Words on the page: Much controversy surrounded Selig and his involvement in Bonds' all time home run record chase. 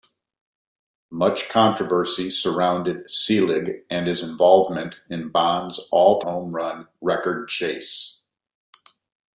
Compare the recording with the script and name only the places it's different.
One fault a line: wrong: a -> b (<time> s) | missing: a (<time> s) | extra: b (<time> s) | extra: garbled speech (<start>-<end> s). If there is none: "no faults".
missing: time (6.2 s)